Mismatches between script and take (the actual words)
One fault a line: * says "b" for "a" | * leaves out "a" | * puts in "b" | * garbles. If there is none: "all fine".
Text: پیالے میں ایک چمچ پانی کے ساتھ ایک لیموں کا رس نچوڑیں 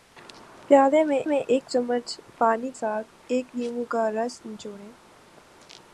* puts in "میں"
* leaves out "کے"